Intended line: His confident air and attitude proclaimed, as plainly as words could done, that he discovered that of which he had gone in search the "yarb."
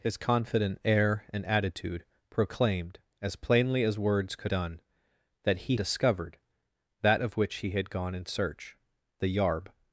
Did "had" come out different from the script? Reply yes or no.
no